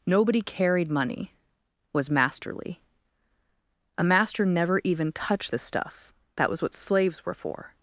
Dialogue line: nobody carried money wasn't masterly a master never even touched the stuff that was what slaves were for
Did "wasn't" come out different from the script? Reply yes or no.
yes